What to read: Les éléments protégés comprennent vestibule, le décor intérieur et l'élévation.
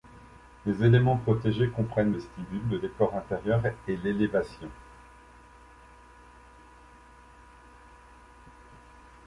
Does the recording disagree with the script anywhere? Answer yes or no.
no